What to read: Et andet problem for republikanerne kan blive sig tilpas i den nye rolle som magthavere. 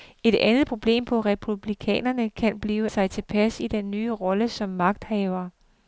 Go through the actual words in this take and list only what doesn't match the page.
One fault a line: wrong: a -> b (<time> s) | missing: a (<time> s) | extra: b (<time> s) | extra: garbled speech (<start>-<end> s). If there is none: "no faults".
no faults